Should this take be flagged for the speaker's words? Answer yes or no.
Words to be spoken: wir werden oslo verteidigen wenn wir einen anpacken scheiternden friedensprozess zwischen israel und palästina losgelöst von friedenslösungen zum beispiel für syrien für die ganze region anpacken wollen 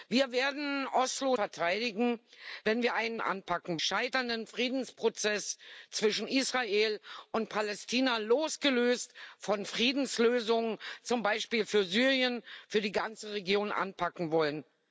no